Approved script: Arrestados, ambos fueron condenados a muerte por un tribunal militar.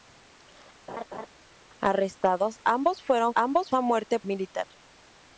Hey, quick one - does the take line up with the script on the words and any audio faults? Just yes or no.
no